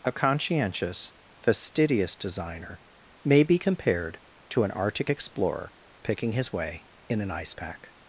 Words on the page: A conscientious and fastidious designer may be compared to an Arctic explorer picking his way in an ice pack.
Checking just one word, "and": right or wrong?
wrong